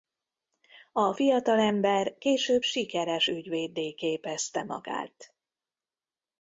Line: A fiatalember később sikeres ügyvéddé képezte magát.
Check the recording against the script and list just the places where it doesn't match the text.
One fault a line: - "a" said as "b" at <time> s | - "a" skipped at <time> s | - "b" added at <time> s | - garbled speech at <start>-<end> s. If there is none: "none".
none